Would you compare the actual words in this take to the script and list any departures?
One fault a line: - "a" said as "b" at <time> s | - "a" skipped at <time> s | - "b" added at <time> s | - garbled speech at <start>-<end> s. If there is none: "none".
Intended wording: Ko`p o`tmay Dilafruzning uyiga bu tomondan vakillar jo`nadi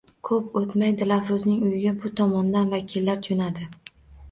none